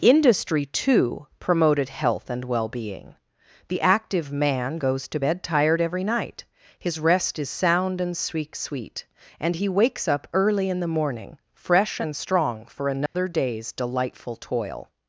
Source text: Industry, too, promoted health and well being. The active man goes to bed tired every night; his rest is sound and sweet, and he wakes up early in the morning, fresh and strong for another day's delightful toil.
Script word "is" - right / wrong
right